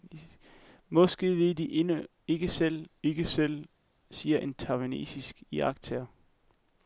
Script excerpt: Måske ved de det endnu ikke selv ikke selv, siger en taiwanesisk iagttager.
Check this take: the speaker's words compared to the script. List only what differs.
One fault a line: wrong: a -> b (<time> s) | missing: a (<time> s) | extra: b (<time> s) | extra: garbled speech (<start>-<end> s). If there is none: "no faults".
no faults